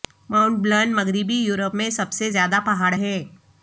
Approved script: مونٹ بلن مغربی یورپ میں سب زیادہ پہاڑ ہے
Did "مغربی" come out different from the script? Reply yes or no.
no